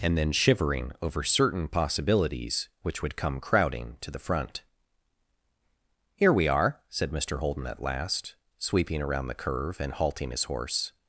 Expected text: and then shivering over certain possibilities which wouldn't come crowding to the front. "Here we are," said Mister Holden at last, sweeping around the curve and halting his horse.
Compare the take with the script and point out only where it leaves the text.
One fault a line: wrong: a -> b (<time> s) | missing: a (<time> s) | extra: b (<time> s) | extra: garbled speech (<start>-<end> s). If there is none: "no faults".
wrong: wouldn't -> would (3.0 s)